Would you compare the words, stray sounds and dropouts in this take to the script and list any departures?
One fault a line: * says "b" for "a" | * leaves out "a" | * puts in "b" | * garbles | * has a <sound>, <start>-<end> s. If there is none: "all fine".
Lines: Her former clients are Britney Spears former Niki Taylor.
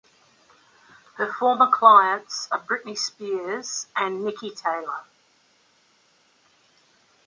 * says "and" for "former"